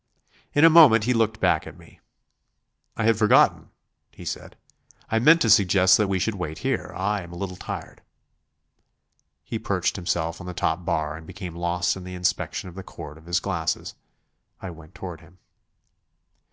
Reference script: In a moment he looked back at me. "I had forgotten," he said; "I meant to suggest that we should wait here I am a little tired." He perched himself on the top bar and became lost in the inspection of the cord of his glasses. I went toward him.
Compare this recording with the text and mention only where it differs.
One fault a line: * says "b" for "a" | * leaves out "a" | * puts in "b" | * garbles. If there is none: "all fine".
all fine